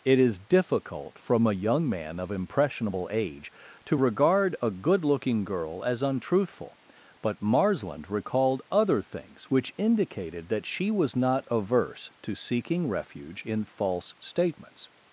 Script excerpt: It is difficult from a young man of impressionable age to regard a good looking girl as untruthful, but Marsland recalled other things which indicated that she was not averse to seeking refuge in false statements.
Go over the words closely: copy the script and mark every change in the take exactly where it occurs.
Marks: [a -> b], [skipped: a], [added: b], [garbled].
It is difficult from a young man of impressionable age to regard a good looking girl as untruthful, but Marsland recalled other things which indicated that she was not averse to seeking refuge in false statements.